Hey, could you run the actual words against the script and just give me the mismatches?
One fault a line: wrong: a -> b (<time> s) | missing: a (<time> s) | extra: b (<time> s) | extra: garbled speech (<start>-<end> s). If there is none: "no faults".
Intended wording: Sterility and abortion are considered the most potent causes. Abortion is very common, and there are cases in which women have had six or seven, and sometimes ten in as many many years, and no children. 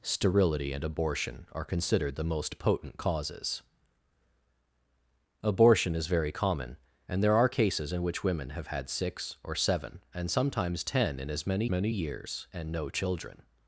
no faults